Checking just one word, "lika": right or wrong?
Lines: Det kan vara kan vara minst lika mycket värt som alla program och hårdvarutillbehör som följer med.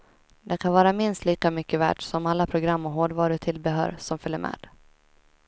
right